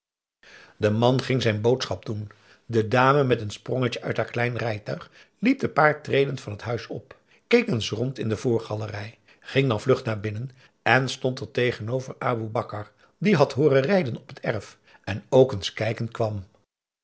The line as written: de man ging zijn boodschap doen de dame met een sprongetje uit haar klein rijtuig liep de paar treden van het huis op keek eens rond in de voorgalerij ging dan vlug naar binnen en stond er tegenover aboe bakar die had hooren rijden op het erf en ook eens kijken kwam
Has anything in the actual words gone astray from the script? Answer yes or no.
no